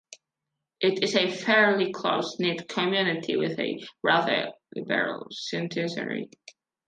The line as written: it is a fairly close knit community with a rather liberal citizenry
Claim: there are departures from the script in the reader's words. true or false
false